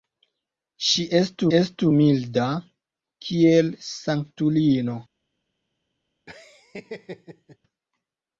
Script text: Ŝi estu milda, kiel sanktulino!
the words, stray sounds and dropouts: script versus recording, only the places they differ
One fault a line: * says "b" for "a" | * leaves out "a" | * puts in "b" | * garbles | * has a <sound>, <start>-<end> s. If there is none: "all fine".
* puts in "estu"
* has a laugh, 6.3-7.6 s